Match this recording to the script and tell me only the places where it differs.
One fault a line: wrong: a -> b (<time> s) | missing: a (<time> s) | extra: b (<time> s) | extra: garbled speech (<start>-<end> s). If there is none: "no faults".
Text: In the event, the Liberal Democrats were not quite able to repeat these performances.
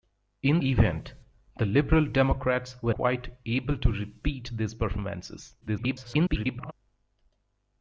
missing: the (0.6 s)
missing: not (2.9 s)
extra: garbled speech (5.6-6.7 s)